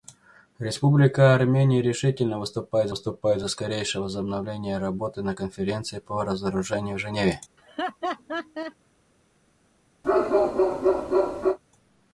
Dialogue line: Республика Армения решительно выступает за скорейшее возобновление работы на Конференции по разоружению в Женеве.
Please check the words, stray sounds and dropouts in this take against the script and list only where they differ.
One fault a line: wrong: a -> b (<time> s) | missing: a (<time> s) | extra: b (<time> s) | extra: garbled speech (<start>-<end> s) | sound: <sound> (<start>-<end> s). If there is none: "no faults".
extra: выступает (2.9 s)
sound: laugh (7.6-8.8 s)
sound: bark (10.0-11.6 s)